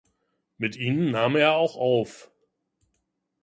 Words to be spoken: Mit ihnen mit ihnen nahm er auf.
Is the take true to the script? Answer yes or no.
no